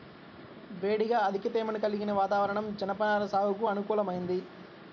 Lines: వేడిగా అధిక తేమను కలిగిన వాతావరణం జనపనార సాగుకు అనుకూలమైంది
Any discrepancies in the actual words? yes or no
no